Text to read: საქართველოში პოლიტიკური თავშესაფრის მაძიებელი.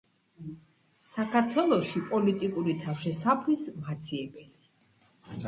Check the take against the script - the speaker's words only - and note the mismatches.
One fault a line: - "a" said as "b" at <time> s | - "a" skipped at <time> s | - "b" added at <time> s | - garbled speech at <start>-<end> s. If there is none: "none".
none